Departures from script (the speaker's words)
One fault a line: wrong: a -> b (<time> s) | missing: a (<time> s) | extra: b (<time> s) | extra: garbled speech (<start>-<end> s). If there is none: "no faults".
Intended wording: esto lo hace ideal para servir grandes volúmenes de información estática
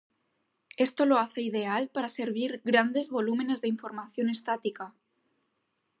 no faults